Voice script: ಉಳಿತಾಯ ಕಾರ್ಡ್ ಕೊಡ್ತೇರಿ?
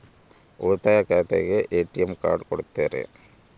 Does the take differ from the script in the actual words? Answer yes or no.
yes